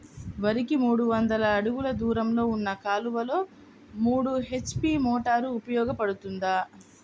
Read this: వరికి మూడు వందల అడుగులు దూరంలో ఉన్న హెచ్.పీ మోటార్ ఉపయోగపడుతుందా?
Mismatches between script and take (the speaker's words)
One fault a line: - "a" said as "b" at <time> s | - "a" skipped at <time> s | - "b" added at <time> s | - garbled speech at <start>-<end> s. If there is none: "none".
- "కాలువలో మూడు" added at 2.8 s